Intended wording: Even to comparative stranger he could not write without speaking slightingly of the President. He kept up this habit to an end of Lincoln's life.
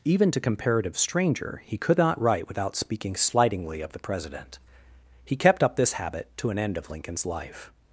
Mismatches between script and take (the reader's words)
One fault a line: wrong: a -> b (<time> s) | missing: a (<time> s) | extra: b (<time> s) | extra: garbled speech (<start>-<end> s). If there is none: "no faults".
no faults